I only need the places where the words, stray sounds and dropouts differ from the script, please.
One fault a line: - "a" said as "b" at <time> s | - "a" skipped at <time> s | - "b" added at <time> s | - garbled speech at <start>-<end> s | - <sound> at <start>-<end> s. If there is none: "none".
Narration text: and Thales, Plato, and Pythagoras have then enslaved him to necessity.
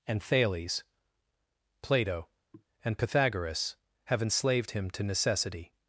- throat clearing at 2.5-2.7 s
- "then" skipped at 4.2 s